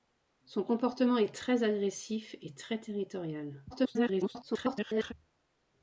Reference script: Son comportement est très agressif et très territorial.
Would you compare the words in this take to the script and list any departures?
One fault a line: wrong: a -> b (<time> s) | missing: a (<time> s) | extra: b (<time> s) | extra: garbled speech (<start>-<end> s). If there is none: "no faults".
extra: garbled speech (3.7-5.1 s)